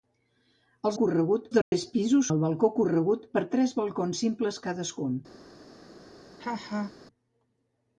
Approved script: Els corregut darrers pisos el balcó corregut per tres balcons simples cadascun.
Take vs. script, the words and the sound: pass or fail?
fail